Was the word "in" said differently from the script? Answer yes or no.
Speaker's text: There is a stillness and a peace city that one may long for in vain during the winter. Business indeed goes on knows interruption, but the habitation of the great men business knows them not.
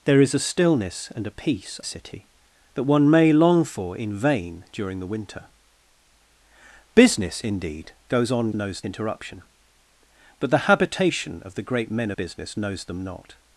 no